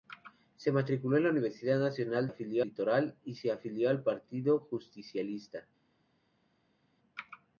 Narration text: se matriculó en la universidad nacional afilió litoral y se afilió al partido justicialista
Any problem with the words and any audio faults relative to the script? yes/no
no